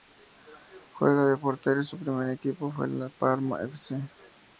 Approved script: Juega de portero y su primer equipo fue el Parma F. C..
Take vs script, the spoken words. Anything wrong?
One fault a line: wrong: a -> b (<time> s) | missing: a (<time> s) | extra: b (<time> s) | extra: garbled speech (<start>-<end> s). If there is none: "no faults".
no faults